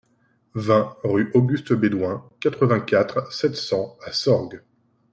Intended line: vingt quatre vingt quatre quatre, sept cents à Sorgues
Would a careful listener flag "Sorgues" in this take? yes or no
no